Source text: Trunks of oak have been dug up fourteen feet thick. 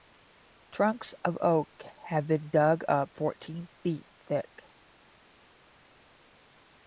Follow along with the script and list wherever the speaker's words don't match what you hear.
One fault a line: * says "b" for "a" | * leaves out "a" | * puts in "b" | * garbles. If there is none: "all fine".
all fine